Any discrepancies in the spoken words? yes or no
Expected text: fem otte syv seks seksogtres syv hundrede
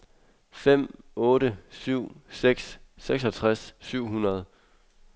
no